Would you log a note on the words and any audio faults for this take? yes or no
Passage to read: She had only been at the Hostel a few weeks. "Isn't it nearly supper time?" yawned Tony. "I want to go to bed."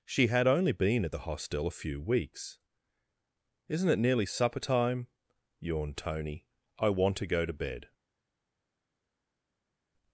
no